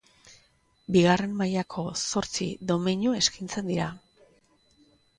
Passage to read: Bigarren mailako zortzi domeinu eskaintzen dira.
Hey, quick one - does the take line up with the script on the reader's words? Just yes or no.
yes